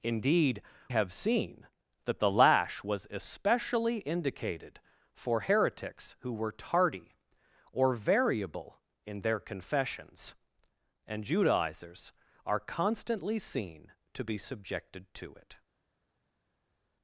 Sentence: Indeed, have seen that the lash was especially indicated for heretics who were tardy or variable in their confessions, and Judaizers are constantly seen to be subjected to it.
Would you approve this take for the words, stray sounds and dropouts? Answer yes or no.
yes